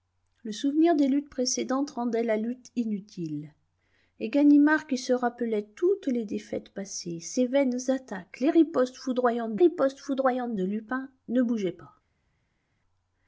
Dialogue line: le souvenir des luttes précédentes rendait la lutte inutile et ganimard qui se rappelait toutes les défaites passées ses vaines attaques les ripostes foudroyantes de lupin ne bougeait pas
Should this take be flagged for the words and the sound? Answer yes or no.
yes